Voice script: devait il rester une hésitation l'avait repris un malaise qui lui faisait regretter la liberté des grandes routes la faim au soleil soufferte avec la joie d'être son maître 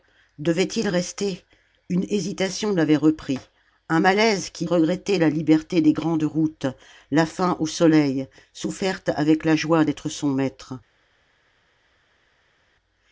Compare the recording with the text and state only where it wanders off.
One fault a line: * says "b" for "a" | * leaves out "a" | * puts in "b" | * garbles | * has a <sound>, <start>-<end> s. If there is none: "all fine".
* leaves out "lui faisait"